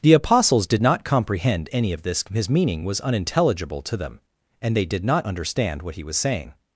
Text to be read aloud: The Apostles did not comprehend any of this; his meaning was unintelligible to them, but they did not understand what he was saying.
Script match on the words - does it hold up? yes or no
no